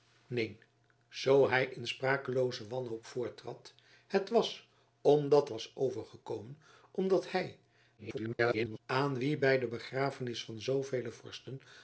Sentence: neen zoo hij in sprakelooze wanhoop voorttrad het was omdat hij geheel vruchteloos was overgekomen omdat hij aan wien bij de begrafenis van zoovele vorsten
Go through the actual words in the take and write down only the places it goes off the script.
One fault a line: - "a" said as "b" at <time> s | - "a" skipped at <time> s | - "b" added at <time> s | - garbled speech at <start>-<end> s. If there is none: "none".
- "hij geheel vruchteloos" skipped at 5.5 s
- garbled speech at 8.0-8.8 s